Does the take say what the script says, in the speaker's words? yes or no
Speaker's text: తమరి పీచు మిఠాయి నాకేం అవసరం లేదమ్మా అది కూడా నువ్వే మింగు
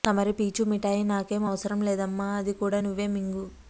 yes